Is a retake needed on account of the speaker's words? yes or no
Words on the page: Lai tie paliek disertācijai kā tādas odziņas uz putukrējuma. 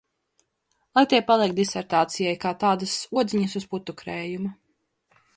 no